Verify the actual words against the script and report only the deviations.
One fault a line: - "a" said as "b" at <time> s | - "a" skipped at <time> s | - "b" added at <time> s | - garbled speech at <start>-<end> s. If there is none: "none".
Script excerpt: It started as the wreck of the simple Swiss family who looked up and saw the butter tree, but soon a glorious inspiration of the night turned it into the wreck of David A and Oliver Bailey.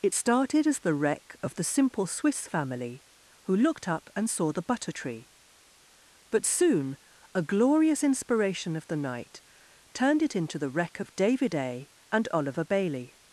none